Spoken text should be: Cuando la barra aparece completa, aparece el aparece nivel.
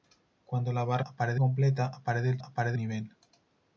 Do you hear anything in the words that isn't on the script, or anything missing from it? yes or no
no